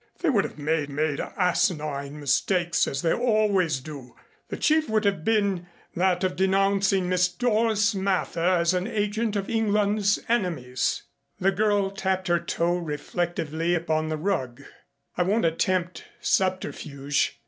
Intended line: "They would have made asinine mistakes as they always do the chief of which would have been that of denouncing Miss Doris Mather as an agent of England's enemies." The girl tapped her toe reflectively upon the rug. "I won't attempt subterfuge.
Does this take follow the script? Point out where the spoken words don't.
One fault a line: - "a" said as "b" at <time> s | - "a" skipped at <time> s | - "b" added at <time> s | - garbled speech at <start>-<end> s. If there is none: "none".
- "made" added at 0.9 s
- "of which" skipped at 4.9 s